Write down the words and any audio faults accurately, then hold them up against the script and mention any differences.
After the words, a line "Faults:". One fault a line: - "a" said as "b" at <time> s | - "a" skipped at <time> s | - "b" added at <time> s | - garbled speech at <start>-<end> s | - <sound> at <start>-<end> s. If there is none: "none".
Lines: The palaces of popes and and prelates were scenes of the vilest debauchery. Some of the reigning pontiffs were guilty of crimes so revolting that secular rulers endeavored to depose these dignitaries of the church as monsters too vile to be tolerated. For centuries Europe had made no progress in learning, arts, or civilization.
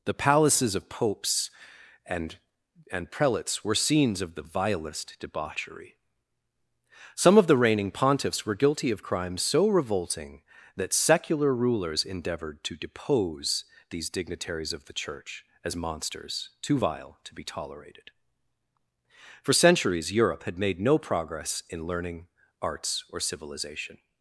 The palaces of popes and and prelates were scenes of the vilest debauchery. Some of the reigning pontiffs were guilty of crimes so revolting that secular rulers endeavored to depose these dignitaries of the church as monsters too vile to be tolerated. For centuries Europe had made no progress in learning, arts, or civilization.
Faults:
none